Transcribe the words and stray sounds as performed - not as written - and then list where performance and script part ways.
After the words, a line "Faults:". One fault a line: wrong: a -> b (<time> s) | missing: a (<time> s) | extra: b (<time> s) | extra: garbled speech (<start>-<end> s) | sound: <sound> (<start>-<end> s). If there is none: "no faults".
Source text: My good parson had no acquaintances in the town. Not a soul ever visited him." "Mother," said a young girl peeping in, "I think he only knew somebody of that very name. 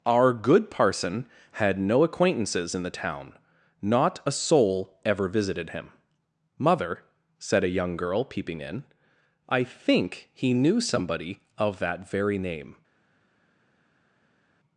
Our good parson had no acquaintances in the town. Not a soul ever visited him." "Mother," said a young girl peeping in, "I think he knew somebody of that very name.
Faults:
wrong: My -> Our (0.1 s)
missing: only (10.6 s)